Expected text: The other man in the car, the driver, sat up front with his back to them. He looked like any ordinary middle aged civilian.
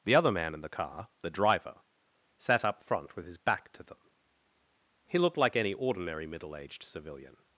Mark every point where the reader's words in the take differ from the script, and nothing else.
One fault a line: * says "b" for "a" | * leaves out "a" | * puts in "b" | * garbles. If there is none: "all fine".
all fine